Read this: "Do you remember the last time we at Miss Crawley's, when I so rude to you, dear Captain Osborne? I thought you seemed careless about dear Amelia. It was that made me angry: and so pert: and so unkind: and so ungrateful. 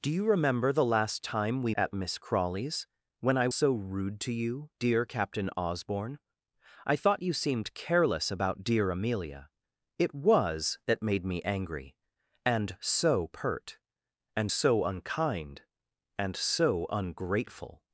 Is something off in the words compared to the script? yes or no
no